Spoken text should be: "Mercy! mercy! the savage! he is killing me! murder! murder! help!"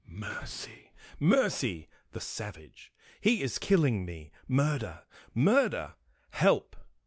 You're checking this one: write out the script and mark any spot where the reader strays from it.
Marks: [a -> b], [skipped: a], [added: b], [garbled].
"Mercy! mercy! the savage! he is killing me! murder! murder! help!"